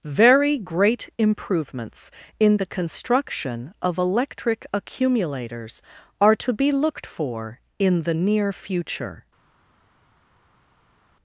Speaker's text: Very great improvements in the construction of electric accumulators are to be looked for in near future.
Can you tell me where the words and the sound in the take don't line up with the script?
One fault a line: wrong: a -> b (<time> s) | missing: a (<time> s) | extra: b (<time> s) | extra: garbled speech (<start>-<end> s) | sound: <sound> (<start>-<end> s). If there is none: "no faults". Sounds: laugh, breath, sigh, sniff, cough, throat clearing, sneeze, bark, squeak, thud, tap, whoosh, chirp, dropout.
extra: the (8.0 s)